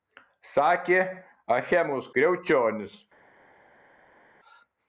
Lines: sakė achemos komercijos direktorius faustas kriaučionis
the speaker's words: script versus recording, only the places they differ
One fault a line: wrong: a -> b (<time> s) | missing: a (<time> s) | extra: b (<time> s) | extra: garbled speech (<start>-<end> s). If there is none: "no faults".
missing: komercijos direktorius faustas (2.1 s)